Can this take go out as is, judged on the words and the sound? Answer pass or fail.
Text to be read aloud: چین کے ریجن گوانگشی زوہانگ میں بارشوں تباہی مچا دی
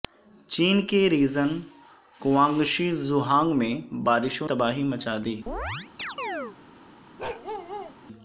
fail